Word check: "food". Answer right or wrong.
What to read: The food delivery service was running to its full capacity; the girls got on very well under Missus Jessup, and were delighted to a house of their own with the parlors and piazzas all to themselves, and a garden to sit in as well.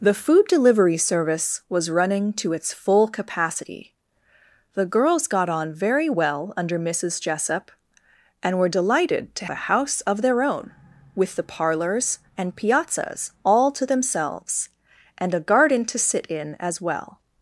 right